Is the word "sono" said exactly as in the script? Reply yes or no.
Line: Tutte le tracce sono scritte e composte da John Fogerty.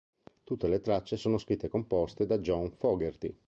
yes